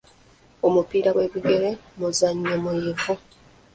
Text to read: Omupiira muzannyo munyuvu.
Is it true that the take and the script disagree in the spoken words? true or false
true